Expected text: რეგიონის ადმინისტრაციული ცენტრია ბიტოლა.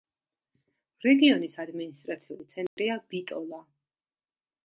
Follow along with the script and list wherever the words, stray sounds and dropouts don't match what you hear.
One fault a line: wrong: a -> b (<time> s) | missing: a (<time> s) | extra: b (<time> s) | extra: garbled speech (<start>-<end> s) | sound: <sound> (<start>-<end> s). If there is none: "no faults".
sound: dropout (2.7-2.8 s)